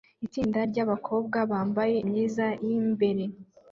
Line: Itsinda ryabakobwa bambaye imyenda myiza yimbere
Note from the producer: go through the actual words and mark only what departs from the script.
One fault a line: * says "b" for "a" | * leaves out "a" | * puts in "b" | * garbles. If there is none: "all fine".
* leaves out "imyenda"